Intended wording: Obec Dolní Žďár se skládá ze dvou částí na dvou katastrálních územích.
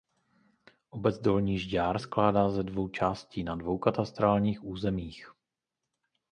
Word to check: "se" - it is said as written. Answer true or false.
false